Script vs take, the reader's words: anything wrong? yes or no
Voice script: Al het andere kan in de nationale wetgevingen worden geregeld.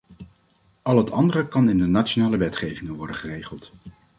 no